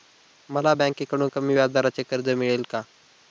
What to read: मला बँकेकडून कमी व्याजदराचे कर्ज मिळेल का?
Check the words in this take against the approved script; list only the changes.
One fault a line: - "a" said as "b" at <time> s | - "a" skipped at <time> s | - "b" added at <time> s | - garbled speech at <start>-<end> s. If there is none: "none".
none